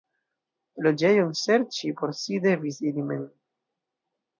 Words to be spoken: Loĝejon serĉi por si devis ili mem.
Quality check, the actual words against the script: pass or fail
pass